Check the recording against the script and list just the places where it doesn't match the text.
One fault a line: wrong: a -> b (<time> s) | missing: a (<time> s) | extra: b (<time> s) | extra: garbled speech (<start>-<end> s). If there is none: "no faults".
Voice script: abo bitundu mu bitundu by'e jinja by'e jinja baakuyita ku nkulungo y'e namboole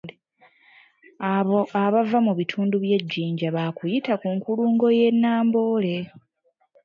wrong: bitundu -> abava (1.8 s)
missing: by'e jinja (3.5 s)